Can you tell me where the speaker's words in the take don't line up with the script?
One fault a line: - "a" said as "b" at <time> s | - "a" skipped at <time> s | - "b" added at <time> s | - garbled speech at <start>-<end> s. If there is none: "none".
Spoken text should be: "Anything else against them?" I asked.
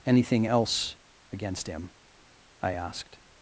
- "them" said as "him" at 1.7 s